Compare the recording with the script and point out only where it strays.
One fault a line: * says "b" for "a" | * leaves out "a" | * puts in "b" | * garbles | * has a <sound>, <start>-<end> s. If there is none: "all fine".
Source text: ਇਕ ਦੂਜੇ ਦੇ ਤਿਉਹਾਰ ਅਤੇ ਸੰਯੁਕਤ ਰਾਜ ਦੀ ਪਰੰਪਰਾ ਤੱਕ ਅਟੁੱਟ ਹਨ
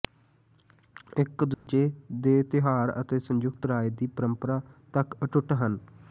* has a dropout, 1.5-1.7 s